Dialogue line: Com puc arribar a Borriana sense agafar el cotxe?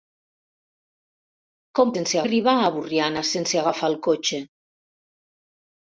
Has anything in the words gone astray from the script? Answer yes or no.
yes